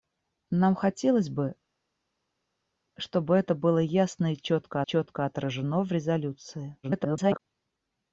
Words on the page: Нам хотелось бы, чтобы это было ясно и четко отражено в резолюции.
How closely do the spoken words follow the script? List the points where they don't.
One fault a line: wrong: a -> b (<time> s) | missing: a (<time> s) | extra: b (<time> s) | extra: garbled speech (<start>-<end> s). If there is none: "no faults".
extra: четко (4.8 s)
extra: garbled speech (6.8-7.4 s)